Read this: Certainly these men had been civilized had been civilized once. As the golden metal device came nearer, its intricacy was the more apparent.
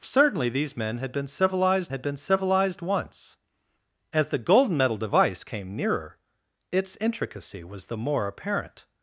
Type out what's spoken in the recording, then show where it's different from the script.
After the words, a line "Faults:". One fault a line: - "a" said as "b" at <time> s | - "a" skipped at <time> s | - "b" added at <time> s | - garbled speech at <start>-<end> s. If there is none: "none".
Certainly these men had been civilized had been civilized once. As the golden metal device came nearer, its intricacy was the more apparent.
Faults:
none